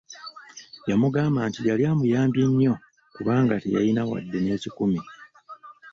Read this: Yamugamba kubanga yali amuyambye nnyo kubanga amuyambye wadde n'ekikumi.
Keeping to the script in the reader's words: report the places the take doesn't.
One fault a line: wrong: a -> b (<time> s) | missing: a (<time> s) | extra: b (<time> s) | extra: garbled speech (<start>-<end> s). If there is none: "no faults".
wrong: kubanga -> nti (1.5 s)
wrong: amuyambye -> teyalina (3.6 s)